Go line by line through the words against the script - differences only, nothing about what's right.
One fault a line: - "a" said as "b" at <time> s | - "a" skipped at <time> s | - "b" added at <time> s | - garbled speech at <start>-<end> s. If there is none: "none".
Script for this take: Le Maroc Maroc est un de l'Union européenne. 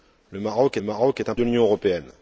none